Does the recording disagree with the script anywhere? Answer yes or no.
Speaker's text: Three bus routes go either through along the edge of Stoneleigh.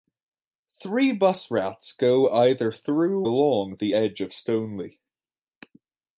no